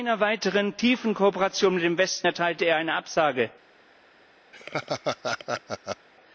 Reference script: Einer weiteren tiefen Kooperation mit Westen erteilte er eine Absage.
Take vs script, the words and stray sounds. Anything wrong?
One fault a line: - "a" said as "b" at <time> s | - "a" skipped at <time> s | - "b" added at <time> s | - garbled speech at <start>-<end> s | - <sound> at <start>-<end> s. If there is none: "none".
- "dem" added at 1.8 s
- laugh at 4.5-6.1 s